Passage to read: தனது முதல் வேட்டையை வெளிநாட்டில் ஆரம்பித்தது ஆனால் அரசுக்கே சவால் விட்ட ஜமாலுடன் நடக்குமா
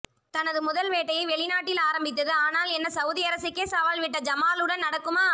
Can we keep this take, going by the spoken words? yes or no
no